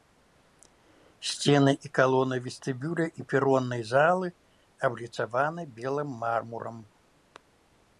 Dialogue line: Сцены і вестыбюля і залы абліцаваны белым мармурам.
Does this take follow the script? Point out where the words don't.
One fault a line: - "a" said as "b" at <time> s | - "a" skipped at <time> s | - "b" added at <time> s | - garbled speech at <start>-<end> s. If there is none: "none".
- "калоны" added at 2.0 s
- "пероннай" added at 3.3 s